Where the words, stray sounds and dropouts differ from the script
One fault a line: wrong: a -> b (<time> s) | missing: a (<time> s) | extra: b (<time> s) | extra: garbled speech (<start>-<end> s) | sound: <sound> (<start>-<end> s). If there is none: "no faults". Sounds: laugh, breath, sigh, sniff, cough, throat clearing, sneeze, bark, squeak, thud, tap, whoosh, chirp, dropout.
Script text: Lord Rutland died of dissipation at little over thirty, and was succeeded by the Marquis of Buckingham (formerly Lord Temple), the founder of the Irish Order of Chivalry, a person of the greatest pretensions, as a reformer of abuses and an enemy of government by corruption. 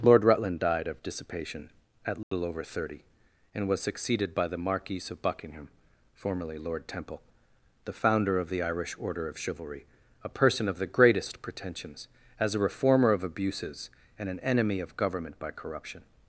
sound: dropout (2.2-2.3 s)